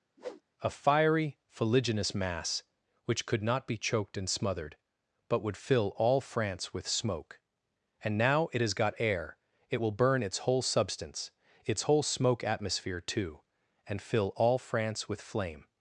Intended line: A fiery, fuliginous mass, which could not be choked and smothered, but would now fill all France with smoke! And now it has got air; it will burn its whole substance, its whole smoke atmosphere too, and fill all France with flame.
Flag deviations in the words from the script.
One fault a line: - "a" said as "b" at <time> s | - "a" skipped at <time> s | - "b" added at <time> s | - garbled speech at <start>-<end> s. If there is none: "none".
- "now" skipped at 5.6 s